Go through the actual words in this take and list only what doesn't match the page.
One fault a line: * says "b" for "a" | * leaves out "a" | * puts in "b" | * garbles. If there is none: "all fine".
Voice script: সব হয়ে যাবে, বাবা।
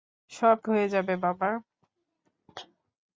all fine